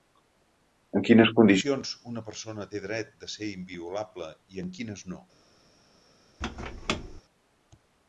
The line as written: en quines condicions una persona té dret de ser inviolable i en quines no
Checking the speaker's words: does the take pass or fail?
pass